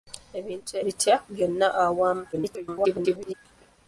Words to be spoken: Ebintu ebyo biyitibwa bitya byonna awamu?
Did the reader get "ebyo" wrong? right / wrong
wrong